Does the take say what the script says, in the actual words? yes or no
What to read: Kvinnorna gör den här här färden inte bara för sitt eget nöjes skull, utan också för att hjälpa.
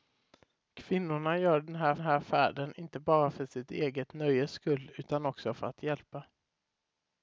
yes